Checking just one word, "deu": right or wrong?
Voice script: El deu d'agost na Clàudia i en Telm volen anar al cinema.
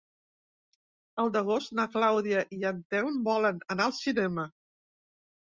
wrong